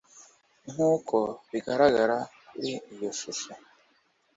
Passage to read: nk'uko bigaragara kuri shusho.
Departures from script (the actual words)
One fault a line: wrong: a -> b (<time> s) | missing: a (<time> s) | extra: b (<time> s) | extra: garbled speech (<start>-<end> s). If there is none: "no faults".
extra: iyo (2.9 s)